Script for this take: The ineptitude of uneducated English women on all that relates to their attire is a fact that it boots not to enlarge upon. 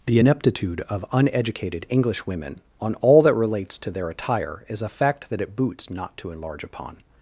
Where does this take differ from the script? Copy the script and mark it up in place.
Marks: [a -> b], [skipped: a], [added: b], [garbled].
The ineptitude of uneducated English women on all that relates to their attire is a fact that it boots not to enlarge upon.